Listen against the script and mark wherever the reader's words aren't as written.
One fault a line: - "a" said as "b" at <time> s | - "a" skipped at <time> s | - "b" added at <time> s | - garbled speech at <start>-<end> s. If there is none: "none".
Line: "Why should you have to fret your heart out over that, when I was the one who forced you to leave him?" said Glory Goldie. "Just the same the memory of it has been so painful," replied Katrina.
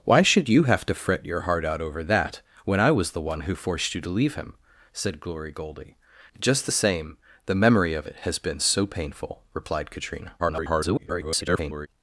- garbled speech at 10.4-11.9 s